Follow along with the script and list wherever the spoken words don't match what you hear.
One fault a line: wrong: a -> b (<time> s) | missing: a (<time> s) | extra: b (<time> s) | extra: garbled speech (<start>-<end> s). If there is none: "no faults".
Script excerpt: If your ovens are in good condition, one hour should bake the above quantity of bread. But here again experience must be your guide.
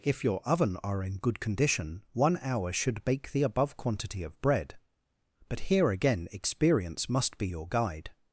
wrong: ovens -> oven (0.5 s)